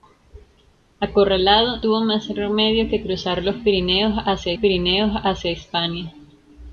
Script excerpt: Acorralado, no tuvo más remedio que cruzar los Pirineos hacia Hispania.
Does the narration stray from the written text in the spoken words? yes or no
yes